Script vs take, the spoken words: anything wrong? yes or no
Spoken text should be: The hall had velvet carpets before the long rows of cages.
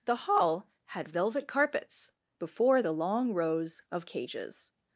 no